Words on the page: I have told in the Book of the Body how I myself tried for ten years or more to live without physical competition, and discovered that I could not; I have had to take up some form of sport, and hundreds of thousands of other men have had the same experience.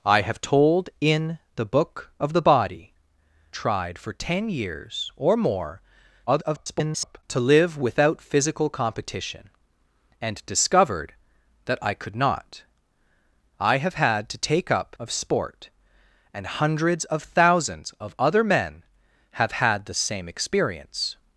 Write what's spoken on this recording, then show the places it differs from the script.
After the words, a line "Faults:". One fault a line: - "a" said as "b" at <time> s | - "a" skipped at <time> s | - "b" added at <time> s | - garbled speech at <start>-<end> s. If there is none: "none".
I have told in the Book of the Body tried for ten years or more [garbled] to live without physical competition, and discovered that I could not; I have had to take up of sport, and hundreds of thousands of other men have had the same experience.
Faults:
- "how I myself" skipped at 3.0 s
- garbled speech at 6.3-7.2 s
- "some form" skipped at 15.0 s